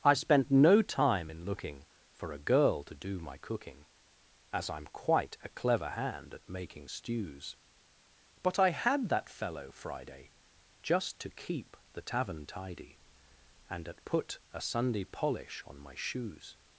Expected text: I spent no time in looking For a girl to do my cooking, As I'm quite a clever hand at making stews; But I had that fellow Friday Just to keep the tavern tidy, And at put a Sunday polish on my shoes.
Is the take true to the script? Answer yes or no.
yes